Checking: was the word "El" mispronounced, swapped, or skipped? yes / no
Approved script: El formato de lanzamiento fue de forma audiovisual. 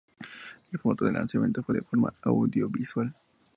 no